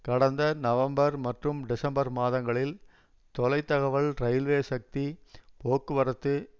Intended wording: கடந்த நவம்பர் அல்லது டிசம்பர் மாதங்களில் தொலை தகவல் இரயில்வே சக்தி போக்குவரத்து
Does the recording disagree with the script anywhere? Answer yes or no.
yes